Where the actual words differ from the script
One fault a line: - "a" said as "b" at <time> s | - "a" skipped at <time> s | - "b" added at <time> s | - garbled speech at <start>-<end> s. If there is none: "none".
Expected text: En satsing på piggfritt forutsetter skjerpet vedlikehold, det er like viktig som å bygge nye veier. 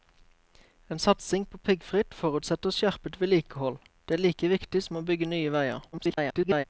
- garbled speech at 5.9-6.6 s